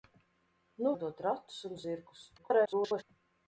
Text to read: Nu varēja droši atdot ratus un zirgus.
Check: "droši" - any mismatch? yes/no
yes